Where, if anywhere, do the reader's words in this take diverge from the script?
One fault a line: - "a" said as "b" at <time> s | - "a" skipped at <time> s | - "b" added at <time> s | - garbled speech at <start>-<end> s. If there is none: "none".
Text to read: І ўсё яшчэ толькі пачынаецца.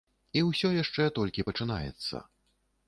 none